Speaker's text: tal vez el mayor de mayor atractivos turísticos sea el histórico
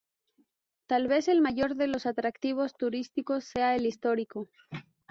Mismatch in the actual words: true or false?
true